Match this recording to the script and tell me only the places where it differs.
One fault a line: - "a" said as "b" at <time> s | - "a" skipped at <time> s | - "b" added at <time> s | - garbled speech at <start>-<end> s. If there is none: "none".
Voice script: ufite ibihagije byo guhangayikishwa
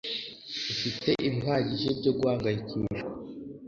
none